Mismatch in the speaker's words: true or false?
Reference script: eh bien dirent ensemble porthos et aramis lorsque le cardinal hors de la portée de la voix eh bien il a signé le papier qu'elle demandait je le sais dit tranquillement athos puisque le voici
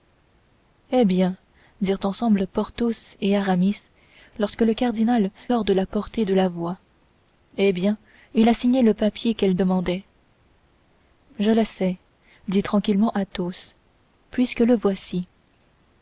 false